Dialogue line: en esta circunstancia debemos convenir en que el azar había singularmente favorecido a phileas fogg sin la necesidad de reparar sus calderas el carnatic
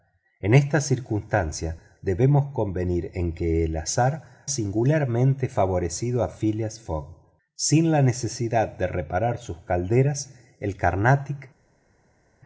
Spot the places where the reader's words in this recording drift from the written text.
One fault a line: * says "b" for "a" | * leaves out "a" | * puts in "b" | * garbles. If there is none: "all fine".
* leaves out "había"